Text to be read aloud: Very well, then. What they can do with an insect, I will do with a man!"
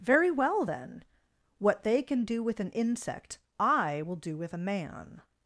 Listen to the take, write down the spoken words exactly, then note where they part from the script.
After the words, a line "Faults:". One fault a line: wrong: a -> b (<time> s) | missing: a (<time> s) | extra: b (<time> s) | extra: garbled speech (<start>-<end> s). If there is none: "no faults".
Very well, then. What they can do with an insect, I will do with a man!"
Faults:
no faults